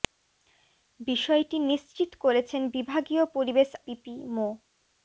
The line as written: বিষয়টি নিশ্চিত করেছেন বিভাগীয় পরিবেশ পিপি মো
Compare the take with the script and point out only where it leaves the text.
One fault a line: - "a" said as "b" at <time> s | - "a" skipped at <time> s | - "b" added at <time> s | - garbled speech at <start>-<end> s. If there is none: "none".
none